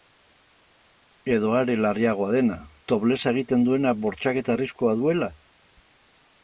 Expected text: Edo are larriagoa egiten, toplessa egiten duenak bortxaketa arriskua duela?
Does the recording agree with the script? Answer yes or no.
no